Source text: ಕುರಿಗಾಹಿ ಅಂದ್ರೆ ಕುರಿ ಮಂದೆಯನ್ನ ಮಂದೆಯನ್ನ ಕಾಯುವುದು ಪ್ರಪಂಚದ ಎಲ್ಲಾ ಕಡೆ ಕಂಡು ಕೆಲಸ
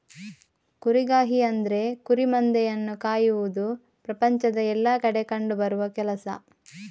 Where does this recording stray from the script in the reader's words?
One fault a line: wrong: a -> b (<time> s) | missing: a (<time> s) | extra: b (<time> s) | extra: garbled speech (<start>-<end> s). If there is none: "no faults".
missing: ಮಂದೆಯನ್ನ (3.0 s)
extra: ಬರುವ (5.6 s)